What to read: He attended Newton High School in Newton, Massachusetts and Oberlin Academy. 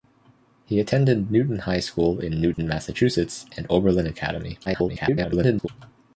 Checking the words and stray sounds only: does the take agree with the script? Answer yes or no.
no